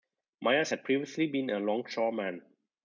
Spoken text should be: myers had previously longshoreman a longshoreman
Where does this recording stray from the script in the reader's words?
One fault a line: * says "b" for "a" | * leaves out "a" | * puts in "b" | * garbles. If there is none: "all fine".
* says "been" for "longshoreman"